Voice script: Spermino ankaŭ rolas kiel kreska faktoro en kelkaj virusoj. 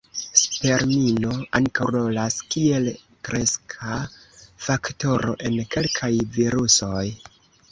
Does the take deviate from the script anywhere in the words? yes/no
no